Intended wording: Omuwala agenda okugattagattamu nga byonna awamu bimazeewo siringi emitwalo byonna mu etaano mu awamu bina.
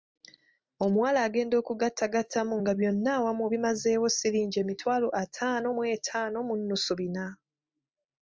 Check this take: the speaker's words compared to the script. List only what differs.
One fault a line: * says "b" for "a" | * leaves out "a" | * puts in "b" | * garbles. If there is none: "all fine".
* says "ataano" for "byonna"
* says "nnusu" for "awamu"